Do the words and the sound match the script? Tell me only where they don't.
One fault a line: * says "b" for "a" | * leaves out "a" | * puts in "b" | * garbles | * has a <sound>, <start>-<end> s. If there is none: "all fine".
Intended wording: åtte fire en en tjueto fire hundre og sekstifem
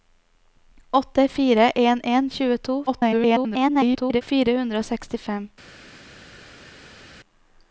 * garbles